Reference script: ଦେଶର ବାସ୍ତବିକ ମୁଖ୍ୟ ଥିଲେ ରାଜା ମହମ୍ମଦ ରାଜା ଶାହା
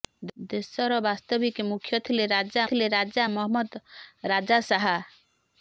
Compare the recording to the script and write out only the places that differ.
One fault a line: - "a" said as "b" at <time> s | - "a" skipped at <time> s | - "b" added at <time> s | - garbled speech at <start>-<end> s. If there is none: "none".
- "ଥିଲେ ରାଜା" added at 2.7 s